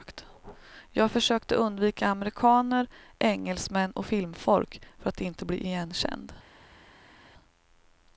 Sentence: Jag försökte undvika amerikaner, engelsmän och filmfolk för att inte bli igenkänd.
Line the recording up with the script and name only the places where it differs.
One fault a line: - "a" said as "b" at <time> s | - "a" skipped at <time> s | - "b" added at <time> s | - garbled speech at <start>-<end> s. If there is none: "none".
none